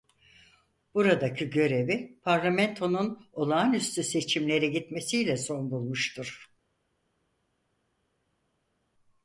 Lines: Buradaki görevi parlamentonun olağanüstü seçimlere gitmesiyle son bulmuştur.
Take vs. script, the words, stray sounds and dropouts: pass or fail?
pass